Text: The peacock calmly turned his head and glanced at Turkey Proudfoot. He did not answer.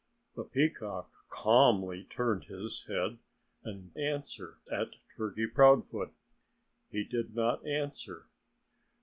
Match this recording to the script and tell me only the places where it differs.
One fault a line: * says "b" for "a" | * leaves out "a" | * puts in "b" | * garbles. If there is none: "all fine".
* says "answer" for "glanced"